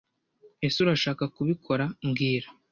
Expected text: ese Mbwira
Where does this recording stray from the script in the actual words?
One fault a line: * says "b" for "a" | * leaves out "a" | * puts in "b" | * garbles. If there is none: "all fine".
* puts in "Urashaka kubikora"